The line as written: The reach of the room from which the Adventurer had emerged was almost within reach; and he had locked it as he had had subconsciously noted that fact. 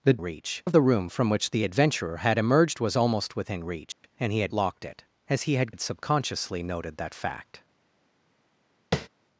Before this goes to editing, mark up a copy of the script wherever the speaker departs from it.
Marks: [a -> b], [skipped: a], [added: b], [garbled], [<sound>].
The reach of the room from which the Adventurer had emerged was almost within reach; [dropout] and he had locked it as he had had subconsciously noted that fact. [tap]